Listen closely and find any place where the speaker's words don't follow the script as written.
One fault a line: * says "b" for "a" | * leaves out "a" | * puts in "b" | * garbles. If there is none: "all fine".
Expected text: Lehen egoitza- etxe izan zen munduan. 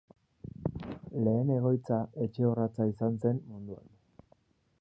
* puts in "orratza"